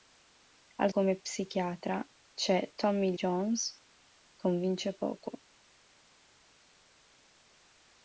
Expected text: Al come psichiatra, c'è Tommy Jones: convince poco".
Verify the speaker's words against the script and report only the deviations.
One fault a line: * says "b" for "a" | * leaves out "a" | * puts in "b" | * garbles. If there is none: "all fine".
all fine